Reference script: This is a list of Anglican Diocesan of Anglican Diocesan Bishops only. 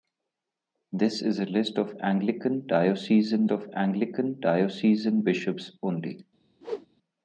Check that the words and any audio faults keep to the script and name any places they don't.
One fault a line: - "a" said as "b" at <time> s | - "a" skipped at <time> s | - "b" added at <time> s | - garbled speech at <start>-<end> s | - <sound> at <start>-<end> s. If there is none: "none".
- whoosh at 6.6-6.9 s